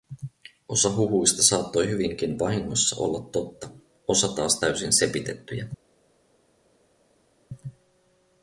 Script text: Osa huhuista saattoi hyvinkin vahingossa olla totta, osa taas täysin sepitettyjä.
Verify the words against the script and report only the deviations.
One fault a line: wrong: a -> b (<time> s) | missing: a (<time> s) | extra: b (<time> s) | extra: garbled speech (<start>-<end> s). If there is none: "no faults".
no faults